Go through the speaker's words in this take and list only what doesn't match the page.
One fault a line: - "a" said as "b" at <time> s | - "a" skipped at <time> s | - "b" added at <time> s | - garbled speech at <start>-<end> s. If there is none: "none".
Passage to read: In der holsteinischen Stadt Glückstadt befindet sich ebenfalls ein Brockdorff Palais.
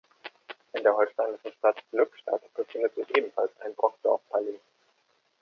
none